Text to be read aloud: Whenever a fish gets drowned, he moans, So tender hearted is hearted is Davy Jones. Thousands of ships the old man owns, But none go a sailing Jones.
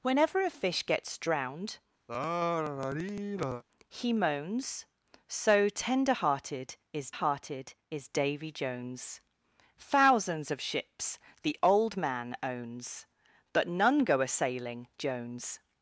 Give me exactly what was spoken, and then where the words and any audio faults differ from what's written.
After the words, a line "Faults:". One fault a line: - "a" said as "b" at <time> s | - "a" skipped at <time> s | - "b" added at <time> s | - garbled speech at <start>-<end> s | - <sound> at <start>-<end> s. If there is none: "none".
Whenever a fish gets drowned, he moans, So tender hearted is hearted is Davy Jones. Thousands of ships the old man owns, But none go a sailing Jones.
Faults:
- sigh at 2.1-3.6 s